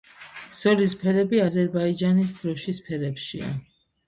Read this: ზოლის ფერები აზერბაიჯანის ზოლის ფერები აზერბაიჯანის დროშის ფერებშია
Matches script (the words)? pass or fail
fail